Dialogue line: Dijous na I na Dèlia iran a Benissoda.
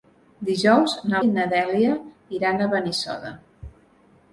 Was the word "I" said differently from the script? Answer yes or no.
no